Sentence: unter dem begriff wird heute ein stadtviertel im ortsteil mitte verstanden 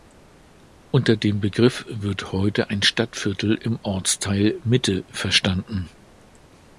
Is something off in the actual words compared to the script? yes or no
no